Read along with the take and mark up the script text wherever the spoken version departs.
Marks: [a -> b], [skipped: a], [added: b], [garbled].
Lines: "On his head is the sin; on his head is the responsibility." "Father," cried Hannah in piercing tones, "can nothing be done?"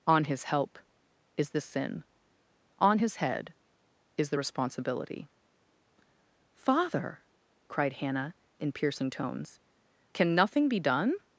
"On his [head -> help] is the sin; on his head is the responsibility." "Father," cried Hannah in piercing tones, "can nothing be done?"